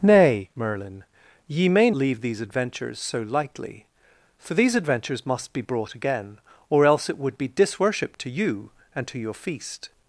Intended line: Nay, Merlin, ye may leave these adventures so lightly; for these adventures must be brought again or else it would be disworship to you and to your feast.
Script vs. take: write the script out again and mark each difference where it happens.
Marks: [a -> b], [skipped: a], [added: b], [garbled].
Nay, Merlin, ye may leave these adventures so lightly; for these adventures must be brought again or else it would be disworship to you and to your feast.